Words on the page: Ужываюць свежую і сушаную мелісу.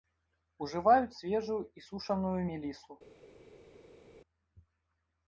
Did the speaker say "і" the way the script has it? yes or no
yes